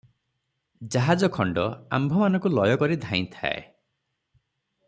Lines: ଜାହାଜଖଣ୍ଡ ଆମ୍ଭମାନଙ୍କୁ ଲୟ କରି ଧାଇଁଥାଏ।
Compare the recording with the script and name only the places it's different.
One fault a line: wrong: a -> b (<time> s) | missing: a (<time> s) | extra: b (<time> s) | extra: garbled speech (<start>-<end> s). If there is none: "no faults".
no faults